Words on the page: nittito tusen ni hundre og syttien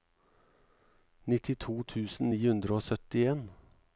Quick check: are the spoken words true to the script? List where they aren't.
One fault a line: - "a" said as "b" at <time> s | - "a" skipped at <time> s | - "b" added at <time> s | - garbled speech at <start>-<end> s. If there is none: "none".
none